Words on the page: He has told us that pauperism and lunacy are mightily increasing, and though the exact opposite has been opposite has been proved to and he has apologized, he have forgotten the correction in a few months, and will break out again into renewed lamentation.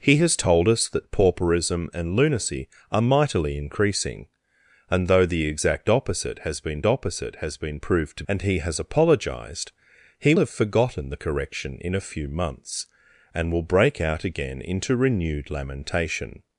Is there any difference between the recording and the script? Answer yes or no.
no